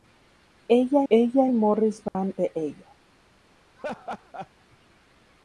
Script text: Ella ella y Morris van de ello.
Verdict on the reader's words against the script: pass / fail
pass